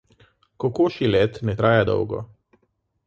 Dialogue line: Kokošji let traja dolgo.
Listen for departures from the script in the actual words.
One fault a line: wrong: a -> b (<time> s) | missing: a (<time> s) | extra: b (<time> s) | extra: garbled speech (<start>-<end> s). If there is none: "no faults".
extra: ne (1.4 s)